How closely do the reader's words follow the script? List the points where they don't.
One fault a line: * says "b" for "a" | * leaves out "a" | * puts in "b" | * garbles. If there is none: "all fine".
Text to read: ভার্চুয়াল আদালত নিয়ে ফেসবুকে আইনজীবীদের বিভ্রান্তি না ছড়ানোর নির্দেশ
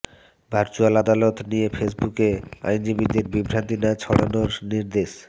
all fine